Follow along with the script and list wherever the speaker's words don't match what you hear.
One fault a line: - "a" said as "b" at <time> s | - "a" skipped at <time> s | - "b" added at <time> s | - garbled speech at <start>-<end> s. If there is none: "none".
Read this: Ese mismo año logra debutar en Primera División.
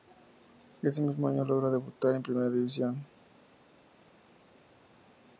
none